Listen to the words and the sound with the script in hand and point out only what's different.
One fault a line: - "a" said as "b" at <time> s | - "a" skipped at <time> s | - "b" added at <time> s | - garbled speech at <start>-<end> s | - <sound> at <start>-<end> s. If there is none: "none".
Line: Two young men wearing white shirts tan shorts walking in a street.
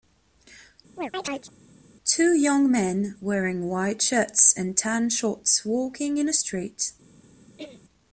- chirp at 1.0-1.5 s
- "and" added at 4.6 s
- throat clearing at 7.6-7.8 s